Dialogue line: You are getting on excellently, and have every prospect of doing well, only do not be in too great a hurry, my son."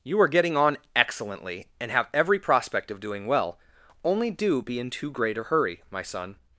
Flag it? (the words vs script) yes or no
yes